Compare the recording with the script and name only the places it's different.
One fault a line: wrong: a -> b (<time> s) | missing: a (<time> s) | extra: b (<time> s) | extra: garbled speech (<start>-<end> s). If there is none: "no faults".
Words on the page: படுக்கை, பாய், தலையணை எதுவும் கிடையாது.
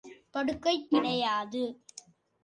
missing: பாய் தலையணை எதுவும் (0.7 s)